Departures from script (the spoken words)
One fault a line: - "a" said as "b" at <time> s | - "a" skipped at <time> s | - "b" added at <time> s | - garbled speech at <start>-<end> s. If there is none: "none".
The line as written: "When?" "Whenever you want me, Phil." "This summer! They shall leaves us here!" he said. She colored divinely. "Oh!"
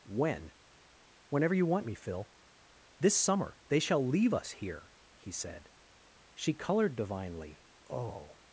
- "leaves" said as "leave" at 4.0 s